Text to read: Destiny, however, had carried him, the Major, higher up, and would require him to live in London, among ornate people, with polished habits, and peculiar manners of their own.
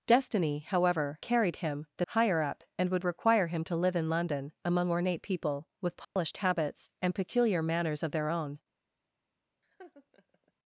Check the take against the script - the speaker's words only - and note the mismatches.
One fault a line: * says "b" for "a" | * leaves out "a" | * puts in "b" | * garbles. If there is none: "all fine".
* leaves out "had"
* leaves out "Major"